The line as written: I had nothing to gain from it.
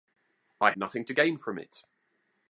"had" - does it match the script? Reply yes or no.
no